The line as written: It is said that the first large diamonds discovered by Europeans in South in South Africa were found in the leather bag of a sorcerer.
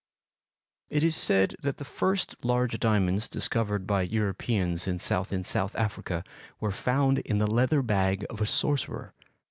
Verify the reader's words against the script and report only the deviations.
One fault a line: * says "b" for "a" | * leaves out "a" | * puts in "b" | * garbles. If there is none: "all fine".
all fine